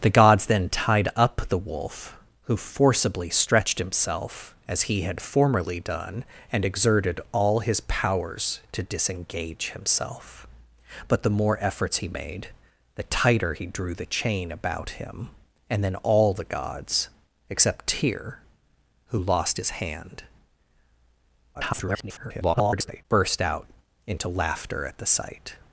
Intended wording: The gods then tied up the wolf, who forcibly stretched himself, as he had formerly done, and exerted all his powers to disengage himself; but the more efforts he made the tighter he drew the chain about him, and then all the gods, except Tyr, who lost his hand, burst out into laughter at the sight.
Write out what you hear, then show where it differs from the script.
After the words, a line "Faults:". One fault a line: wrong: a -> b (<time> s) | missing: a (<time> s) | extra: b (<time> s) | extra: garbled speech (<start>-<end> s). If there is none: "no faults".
The gods then tied up the wolf, who forcibly stretched himself, as he had formerly done, and exerted all his powers to disengage himself; but the more efforts he made the tighter he drew the chain about him, and then all the gods, except Tyr, who lost his hand, [garbled] burst out into laughter at the sight.
Faults:
extra: garbled speech (21.5-23.0 s)